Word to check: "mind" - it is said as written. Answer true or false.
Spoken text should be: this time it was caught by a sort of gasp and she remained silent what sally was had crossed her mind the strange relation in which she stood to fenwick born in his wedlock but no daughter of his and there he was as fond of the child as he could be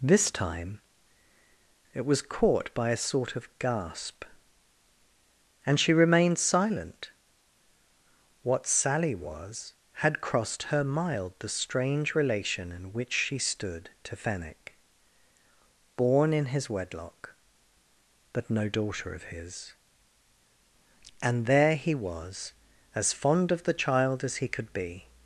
false